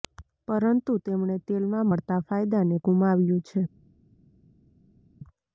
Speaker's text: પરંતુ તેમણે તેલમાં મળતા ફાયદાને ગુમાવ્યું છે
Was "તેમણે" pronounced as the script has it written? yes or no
yes